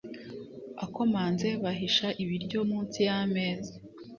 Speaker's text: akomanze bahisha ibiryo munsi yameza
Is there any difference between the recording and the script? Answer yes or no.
no